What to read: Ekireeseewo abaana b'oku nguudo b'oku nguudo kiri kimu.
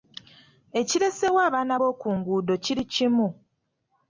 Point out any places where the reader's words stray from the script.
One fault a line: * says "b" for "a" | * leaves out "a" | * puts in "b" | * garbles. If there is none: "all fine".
* leaves out "b'oku nguudo"